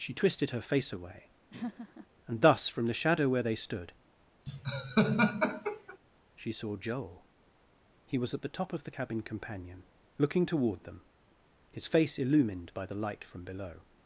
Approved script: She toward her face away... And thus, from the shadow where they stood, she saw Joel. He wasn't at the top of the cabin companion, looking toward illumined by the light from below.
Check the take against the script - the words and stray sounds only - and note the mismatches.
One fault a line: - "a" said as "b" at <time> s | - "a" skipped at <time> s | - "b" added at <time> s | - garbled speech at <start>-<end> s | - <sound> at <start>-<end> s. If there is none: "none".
- "toward" said as "twisted" at 0.1 s
- laugh at 1.5-2.1 s
- laugh at 4.5-6.0 s
- "wasn't" said as "was" at 8.2 s
- "them his face" added at 10.8 s